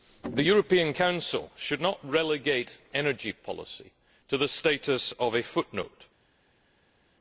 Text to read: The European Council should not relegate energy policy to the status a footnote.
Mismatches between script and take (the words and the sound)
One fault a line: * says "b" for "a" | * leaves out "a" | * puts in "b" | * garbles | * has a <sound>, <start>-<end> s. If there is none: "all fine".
* puts in "of"